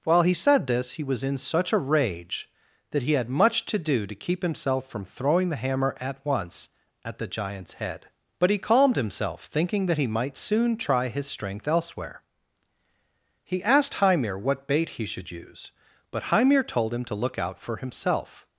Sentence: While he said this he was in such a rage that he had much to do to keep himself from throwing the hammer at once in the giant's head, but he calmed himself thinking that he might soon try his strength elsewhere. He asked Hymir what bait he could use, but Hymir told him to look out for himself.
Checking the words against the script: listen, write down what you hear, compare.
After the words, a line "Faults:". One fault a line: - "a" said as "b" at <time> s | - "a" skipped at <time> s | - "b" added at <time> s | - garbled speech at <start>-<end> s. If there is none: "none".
While he said this he was in such a rage that he had much to do to keep himself from throwing the hammer at once at the giant's head, but he calmed himself thinking that he might soon try his strength elsewhere. He asked Hymir what bait he should use, but Hymir told him to look out for himself.
Faults:
- "in" said as "at" at 7.0 s
- "could" said as "should" at 15.1 s